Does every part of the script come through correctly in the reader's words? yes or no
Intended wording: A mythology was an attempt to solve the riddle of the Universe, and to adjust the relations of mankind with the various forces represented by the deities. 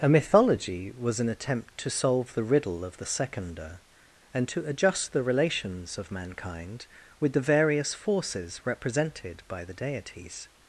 no